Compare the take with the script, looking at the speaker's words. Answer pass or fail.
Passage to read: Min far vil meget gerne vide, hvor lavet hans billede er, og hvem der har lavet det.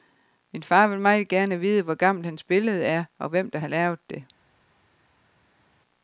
fail